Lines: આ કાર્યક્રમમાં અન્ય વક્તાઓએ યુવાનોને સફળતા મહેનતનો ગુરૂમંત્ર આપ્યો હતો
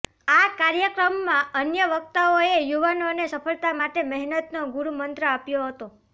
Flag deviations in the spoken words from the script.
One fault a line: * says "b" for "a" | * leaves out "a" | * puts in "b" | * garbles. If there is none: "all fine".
* puts in "માટે"